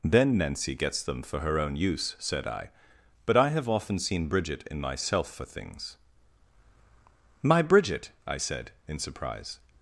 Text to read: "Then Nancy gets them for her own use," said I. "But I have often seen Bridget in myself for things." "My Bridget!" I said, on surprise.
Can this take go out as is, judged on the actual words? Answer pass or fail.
fail